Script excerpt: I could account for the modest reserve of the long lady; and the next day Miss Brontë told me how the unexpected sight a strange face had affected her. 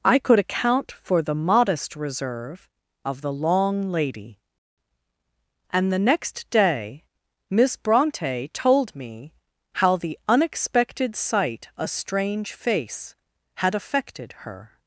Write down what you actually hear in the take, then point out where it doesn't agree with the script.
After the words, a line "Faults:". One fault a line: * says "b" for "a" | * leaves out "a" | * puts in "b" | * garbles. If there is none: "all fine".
I could account for the modest reserve of the long lady; and the next day Miss Brontë told me how the unexpected sight a strange face had affected her.
Faults:
all fine